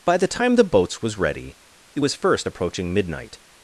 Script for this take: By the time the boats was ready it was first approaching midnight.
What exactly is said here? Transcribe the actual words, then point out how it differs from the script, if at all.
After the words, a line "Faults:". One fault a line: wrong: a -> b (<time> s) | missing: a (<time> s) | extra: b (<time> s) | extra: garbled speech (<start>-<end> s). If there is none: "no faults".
By the time the boats was ready it was first approaching midnight.
Faults:
no faults